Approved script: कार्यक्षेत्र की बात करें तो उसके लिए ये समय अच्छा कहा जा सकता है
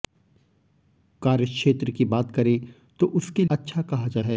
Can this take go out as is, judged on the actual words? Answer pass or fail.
fail